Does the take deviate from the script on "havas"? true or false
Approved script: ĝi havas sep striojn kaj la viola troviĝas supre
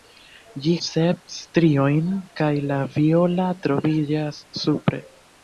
true